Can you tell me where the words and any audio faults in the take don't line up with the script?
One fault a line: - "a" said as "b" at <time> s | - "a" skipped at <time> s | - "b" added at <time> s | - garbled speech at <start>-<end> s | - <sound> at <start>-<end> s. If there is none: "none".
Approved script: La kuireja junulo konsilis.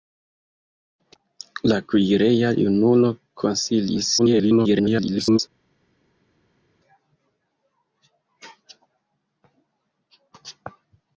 - garbled speech at 4.2-5.4 s